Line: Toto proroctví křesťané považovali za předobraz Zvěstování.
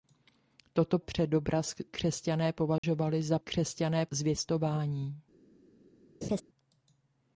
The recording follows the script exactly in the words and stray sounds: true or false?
false